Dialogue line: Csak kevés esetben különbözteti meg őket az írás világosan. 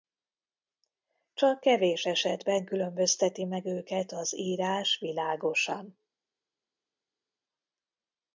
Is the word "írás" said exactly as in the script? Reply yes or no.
yes